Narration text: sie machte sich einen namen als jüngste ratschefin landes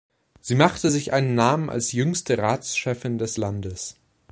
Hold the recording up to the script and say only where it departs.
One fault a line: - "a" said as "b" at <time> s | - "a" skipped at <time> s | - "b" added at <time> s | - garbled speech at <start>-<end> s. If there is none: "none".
- "des" added at 3.2 s